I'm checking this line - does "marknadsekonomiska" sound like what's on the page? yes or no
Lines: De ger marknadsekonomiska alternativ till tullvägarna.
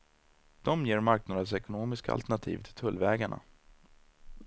yes